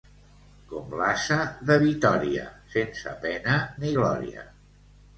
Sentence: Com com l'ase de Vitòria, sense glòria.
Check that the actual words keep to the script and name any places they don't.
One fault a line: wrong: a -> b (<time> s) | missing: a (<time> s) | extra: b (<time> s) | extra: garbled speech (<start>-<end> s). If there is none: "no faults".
missing: com (0.9 s)
extra: pena ni (3.3 s)